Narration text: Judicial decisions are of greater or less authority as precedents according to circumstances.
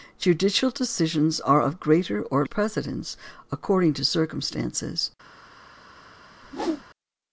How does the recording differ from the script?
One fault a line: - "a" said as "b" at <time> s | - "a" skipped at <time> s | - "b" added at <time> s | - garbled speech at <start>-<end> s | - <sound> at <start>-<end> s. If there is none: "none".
- "less authority as" skipped at 2.5 s
- whoosh at 6.4-6.8 s